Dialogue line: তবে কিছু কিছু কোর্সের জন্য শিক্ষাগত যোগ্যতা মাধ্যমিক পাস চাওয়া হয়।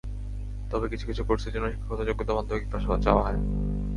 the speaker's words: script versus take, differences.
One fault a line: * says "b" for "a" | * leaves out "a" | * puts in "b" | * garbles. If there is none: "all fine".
all fine